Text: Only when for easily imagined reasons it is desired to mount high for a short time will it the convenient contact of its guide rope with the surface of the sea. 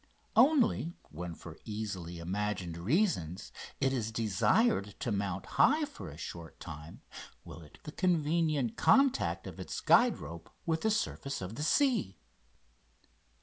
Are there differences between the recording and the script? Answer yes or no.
no